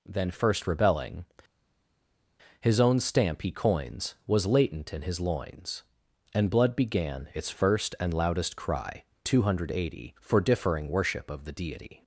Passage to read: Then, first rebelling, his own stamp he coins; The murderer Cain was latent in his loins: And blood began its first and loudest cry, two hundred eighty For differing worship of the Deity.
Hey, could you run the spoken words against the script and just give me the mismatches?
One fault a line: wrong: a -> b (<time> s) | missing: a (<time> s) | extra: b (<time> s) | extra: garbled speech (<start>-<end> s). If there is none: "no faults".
missing: The murderer Cain (4.1 s)